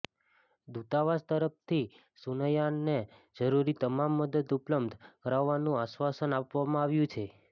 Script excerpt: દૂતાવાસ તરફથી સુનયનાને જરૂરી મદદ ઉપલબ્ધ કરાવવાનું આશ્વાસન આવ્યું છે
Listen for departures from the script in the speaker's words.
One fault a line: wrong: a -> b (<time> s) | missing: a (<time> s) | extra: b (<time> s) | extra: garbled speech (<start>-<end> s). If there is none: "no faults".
extra: તમામ (3.8 s)
extra: આપવામાં (6.4 s)